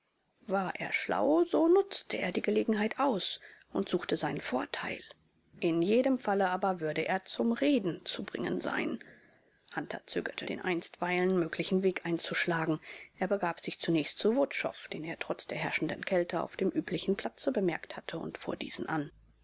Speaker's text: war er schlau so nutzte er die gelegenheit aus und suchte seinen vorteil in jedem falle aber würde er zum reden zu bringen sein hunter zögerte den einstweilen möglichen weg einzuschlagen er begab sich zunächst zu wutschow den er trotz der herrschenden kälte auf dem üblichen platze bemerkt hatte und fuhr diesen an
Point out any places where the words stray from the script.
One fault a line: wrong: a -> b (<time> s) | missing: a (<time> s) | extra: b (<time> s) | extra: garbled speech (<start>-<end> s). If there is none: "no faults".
no faults